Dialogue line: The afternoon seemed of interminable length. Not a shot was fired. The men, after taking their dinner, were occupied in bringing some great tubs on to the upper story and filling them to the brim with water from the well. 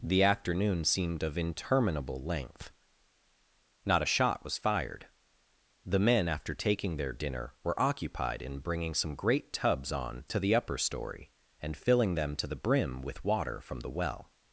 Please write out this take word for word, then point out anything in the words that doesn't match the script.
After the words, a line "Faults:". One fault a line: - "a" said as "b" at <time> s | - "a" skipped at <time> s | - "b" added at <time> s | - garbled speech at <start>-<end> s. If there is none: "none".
The afternoon seemed of interminable length. Not a shot was fired. The men, after taking their dinner, were occupied in bringing some great tubs on to the upper story and filling them to the brim with water from the well.
Faults:
none